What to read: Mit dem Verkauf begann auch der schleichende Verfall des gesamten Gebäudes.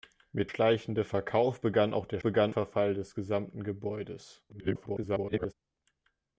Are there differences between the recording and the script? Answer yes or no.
yes